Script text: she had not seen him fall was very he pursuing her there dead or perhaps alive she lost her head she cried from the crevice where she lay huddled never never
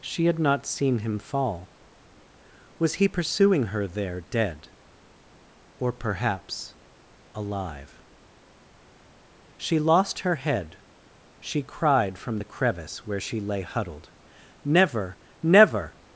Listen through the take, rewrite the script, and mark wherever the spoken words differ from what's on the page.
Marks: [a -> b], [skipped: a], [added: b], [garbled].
she had not seen him fall was [skipped: very] he pursuing her there dead or perhaps alive she lost her head she cried from the crevice where she lay huddled never never